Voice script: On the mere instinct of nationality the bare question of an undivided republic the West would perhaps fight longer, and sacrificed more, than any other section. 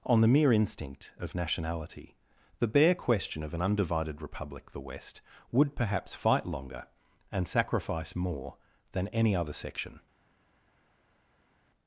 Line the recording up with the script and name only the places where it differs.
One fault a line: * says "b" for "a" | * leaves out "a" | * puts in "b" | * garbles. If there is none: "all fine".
* says "sacrifice" for "sacrificed"